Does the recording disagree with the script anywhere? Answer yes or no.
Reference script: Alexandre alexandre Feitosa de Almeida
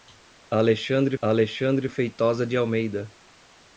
no